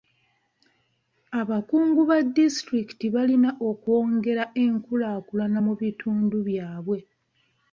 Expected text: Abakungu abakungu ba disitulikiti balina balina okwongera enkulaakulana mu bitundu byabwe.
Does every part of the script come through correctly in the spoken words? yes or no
no